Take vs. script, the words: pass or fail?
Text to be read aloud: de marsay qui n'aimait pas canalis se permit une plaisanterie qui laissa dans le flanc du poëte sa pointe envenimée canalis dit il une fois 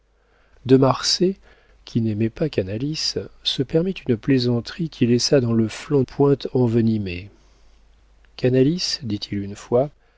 fail